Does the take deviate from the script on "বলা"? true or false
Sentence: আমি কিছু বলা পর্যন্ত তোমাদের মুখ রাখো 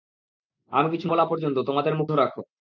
false